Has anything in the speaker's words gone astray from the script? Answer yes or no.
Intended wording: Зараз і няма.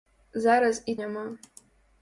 no